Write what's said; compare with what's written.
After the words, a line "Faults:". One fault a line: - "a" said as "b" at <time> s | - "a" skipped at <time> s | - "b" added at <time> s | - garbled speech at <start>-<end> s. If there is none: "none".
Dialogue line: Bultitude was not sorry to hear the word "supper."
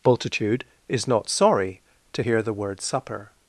Bultitude is not sorry to hear the word "supper."
Faults:
- "was" said as "is" at 0.9 s